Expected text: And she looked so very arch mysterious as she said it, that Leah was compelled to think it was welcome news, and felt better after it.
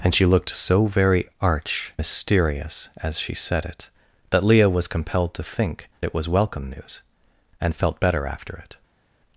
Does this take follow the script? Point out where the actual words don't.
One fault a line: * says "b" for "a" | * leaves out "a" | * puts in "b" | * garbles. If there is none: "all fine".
all fine